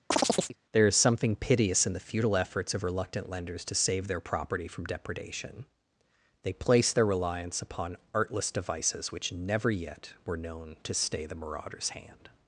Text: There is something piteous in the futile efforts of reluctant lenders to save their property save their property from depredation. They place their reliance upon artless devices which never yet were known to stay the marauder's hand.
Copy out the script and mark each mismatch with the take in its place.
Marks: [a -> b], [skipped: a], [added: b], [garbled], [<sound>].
[chirp] There is something piteous in the futile efforts of reluctant lenders to save their property [skipped: save their property] from depredation. They place their reliance upon artless devices which never yet were known to stay the marauder's hand.